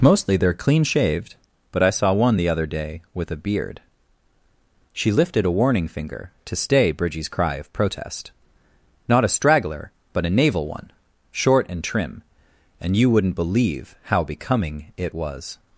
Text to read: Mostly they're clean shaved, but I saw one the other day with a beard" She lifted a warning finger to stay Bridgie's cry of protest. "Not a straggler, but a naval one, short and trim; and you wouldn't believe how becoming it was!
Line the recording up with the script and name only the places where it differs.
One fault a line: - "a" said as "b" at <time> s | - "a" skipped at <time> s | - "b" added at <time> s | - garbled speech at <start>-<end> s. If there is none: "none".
none